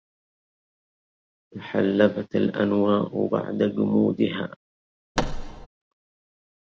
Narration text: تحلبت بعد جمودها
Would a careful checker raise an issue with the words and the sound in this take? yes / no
yes